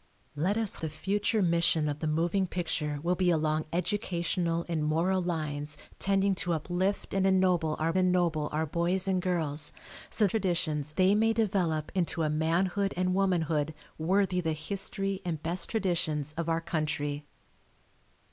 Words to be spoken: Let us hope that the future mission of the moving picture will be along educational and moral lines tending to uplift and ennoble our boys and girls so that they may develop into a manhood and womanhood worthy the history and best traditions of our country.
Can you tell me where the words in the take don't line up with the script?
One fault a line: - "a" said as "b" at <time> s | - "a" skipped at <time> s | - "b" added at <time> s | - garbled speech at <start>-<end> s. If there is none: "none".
- "hope that" skipped at 0.8 s
- "ennoble our" added at 8.0 s
- "that" said as "traditions" at 10.3 s